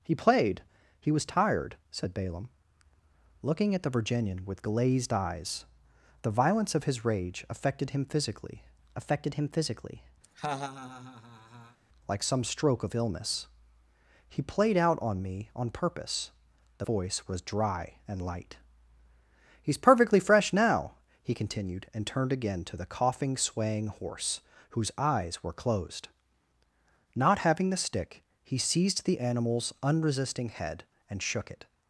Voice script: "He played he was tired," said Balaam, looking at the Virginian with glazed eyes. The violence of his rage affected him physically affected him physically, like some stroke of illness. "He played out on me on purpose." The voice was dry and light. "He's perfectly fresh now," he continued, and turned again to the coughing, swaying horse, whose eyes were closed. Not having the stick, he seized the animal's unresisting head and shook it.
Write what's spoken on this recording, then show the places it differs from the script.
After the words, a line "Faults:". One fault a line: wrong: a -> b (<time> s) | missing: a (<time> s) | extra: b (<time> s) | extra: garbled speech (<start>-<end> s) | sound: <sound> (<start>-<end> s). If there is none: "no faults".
"He played he was tired," said Balaam, looking at the Virginian with glazed eyes. The violence of his rage affected him physically affected him physically, like some stroke of illness. "He played out on me on purpose." The voice was dry and light. "He's perfectly fresh now," he continued, and turned again to the coughing, swaying horse, whose eyes were closed. Not having the stick, he seized the animal's unresisting head and shook it.
Faults:
sound: laugh (10.2-11.8 s)